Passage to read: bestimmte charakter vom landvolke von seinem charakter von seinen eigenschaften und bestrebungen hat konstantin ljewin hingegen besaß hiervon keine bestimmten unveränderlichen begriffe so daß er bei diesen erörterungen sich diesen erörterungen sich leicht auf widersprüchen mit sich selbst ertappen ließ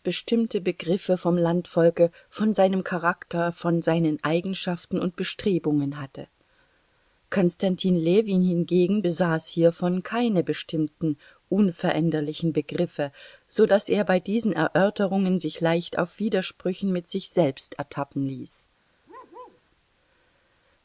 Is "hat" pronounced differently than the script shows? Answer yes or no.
yes